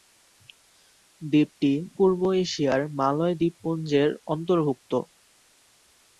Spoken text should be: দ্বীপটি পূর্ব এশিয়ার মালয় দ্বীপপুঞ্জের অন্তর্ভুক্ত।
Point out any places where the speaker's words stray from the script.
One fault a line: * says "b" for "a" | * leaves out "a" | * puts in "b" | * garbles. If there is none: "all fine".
all fine